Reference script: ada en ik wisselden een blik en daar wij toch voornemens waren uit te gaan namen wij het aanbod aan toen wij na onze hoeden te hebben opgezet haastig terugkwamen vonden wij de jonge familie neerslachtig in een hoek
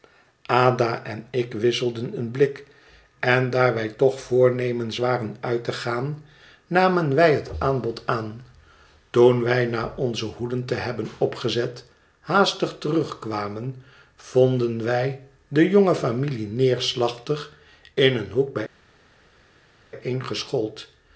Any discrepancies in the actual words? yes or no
no